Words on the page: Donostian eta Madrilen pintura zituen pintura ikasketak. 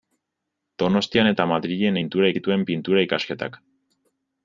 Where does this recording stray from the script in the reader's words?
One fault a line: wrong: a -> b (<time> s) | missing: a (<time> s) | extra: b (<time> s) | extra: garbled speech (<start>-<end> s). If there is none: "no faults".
no faults